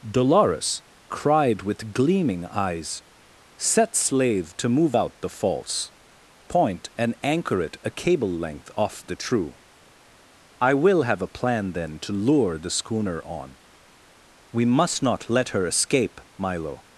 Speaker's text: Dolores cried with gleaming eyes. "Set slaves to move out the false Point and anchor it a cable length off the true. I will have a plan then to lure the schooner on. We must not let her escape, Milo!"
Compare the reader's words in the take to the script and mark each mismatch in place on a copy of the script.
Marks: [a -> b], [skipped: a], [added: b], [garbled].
Dolores cried with gleaming eyes. "Set [slaves -> slave] to move out the false Point and anchor it a cable length off the true. I will have a plan then to lure the schooner on. We must not let her escape, Milo!"